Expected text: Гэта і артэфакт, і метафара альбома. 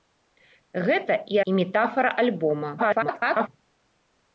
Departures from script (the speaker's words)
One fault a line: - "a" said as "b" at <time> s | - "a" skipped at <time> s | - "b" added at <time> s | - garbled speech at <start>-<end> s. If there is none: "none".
- "артэфакт" skipped at 1.4 s
- garbled speech at 2.8-3.5 s